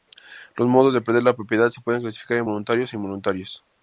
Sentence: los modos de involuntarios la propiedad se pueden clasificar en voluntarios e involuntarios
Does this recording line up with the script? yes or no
no